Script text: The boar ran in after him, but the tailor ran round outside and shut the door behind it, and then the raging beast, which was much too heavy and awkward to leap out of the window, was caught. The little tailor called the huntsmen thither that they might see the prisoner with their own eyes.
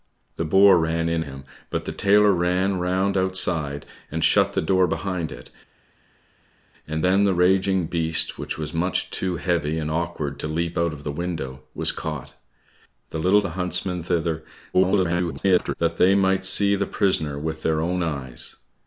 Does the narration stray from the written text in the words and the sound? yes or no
yes